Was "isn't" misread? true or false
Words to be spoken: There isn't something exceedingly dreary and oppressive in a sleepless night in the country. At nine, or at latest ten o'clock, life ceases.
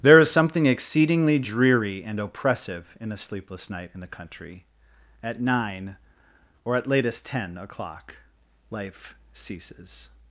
true